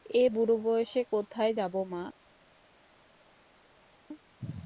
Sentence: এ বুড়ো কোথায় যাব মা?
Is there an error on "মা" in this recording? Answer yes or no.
no